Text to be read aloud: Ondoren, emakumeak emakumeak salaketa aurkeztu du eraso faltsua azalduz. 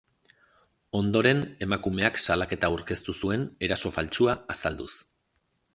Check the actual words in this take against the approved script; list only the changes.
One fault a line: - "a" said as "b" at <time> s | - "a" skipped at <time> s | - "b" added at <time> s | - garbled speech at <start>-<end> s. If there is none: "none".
- "emakumeak" skipped at 2.2 s
- "du" said as "zuen" at 3.2 s